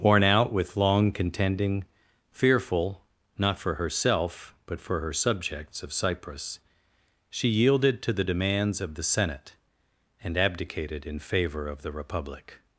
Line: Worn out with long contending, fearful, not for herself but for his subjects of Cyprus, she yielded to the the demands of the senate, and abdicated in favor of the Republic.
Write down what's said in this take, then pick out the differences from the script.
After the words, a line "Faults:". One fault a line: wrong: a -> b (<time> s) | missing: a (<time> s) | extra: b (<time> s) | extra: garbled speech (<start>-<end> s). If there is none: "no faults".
Worn out with long contending, fearful, not for herself but for her subjects of Cyprus, she yielded to the demands of the senate, and abdicated in favor of the Republic.
Faults:
wrong: his -> her (5.0 s)
missing: the (8.2 s)